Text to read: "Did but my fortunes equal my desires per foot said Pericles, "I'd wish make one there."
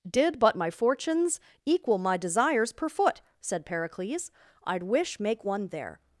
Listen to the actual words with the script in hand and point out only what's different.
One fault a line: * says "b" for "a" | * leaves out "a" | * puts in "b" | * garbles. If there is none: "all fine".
all fine